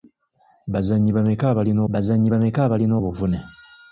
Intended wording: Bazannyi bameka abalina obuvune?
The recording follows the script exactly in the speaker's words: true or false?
false